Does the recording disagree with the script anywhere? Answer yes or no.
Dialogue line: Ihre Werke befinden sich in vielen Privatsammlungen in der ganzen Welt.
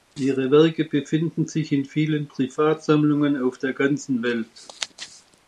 yes